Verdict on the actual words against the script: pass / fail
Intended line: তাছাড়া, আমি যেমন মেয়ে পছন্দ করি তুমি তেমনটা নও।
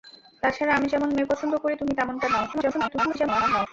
fail